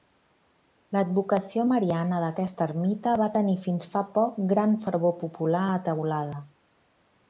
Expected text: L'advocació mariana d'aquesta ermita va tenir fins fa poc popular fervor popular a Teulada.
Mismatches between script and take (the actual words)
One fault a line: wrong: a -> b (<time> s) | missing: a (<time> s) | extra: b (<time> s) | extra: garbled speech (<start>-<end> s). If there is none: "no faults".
wrong: popular -> gran (4.5 s)